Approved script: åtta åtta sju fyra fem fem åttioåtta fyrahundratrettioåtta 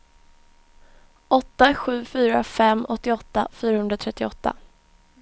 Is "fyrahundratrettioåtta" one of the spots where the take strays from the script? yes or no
no